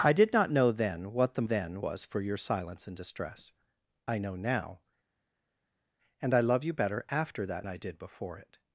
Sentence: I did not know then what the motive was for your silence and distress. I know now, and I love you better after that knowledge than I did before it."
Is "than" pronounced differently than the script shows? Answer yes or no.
yes